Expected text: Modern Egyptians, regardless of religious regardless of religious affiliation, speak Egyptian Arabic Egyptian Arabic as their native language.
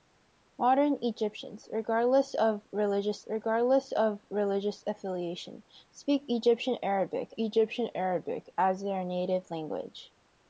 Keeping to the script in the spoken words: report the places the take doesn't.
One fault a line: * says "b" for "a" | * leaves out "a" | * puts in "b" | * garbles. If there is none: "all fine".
all fine